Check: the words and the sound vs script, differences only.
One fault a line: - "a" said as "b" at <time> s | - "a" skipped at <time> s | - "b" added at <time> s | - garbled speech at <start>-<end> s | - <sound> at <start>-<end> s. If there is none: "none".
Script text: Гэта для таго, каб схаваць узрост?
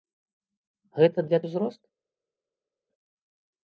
- "таго каб схаваць" skipped at 1.4 s